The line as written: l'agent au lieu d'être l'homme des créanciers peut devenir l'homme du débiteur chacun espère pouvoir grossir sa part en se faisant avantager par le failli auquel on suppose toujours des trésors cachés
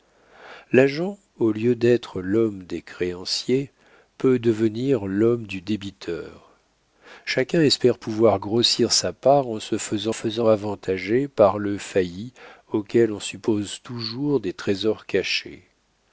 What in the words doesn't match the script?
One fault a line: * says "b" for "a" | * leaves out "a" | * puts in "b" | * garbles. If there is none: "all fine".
* puts in "faisant"